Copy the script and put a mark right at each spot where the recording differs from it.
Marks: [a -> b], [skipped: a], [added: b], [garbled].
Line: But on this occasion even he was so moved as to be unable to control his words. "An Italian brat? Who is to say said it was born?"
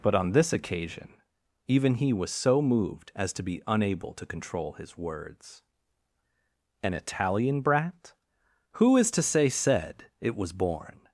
But on this occasion even he was so moved as to be unable to control his words. "An Italian brat? Who is to say said it was born?"